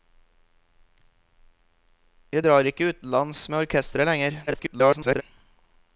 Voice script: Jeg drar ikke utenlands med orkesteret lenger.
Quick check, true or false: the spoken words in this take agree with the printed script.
false